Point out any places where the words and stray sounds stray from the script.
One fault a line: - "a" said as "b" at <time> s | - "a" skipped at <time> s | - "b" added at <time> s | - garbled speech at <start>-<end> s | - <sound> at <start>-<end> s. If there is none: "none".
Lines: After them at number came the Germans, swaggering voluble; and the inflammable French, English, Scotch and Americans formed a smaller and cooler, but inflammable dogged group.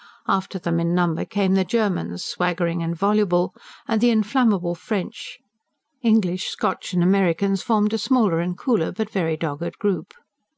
- "at" said as "in" at 0.8 s
- "and" added at 2.8 s
- "inflammable" said as "very" at 9.1 s